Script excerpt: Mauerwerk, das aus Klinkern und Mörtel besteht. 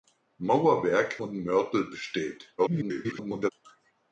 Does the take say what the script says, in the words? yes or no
no